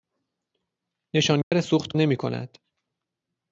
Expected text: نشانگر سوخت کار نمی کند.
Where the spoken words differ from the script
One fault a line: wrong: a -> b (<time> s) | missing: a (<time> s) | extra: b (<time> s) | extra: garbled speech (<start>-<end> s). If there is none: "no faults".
missing: کار (1.9 s)